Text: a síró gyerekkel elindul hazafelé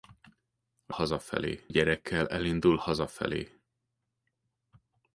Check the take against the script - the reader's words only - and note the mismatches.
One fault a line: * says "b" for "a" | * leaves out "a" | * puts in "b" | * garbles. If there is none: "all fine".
* says "hazafelé" for "síró"